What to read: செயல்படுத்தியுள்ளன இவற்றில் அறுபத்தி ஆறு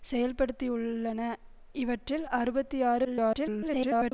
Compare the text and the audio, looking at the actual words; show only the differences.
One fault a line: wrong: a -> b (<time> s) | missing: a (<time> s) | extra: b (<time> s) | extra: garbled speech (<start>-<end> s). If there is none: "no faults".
extra: garbled speech (3.0-4.1 s)